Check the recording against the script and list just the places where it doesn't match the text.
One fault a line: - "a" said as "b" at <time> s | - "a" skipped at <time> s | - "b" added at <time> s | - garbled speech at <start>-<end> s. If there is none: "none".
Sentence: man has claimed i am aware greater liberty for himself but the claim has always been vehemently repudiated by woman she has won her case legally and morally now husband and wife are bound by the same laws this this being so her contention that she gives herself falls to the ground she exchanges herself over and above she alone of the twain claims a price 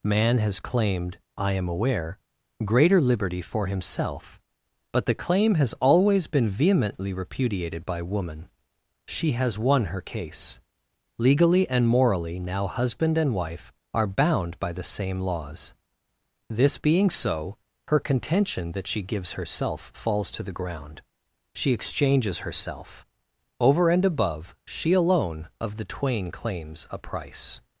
- "this" skipped at 16.8 s